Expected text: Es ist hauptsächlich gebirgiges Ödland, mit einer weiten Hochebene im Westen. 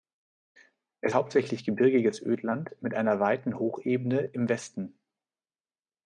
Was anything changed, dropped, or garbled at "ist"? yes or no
yes